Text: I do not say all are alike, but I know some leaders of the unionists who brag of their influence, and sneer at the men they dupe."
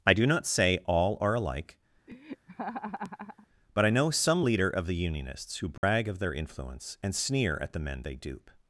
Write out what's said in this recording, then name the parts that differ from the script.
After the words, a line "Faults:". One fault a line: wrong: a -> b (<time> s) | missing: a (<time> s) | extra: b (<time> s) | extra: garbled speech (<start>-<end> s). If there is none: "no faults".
I do not say all are alike, but I know some leader of the unionists who brag of their influence, and sneer at the men they dupe."
Faults:
wrong: leaders -> leader (4.4 s)